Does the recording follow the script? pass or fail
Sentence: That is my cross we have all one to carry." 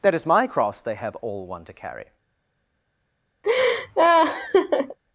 fail